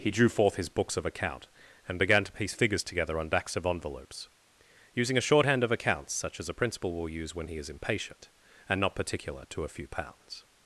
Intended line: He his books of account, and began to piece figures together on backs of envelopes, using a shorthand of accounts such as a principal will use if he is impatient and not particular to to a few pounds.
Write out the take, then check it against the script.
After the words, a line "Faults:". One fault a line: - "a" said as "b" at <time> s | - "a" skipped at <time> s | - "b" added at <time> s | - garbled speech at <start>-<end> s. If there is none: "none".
He drew forth his books of account, and began to piece figures together on backs of envelopes, using a shorthand of accounts such as a principal will use when he is impatient and not particular to a few pounds.
Faults:
- "drew forth" added at 0.1 s
- "if" said as "when" at 7.3 s
- "to" skipped at 9.6 s